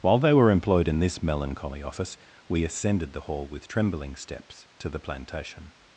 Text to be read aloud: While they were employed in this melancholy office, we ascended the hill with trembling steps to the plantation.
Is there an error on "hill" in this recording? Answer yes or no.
yes